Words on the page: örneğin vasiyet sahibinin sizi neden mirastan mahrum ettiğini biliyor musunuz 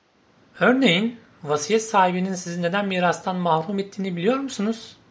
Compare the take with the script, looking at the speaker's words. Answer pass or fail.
pass